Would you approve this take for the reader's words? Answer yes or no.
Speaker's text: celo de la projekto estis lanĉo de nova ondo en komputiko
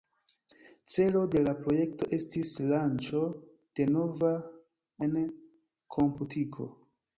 no